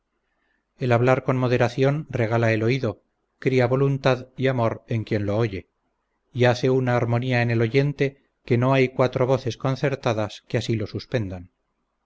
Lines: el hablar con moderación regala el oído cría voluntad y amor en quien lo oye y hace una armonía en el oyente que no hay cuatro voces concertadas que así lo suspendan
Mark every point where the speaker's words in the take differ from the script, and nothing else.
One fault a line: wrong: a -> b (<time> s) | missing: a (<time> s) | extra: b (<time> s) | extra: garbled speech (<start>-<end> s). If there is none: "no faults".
no faults